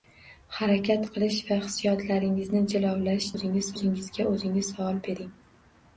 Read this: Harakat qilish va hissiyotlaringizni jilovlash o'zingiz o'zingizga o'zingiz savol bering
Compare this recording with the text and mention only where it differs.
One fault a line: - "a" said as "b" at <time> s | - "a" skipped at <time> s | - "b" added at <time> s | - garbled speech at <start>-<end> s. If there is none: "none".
none